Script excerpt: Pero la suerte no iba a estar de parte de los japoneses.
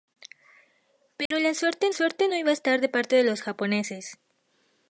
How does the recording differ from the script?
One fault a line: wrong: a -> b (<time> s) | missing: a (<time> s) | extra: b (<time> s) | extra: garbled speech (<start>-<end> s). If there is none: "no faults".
extra: suerte (1.9 s)